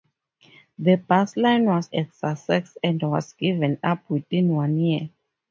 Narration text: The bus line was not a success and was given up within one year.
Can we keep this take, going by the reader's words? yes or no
no